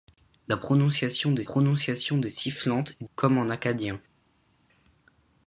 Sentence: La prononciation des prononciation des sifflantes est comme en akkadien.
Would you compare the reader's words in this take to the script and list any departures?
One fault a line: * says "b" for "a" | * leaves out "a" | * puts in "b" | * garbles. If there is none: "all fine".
all fine